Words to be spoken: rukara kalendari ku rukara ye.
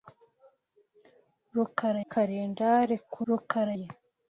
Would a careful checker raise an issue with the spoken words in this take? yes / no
no